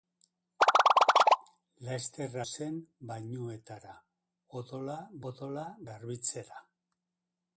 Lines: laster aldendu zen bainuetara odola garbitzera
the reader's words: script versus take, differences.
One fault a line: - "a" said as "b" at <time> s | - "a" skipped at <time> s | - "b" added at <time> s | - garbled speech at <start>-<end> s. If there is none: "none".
- "aldendu" skipped at 2.4 s
- "odola" added at 5.3 s